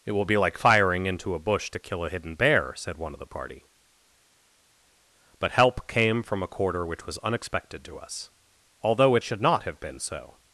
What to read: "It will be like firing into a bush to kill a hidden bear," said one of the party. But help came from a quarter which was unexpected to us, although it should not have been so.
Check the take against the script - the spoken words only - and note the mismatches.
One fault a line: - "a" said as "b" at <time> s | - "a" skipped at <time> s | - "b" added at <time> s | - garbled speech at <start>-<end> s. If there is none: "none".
none